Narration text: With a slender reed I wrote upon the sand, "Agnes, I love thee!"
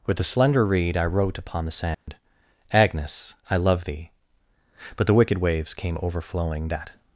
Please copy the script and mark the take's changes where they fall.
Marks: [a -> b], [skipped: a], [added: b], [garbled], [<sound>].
With a slender reed I wrote upon the sand, [dropout] "Agnes, I love thee!" [added: But the wicked waves came overflowing That]